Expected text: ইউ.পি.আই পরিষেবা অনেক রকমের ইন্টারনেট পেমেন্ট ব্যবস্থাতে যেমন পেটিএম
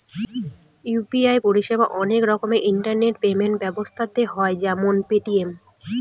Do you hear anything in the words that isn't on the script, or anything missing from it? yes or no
yes